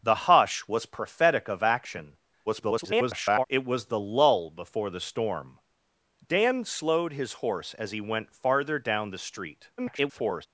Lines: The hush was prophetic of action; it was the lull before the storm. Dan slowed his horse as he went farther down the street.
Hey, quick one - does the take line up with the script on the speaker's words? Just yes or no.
no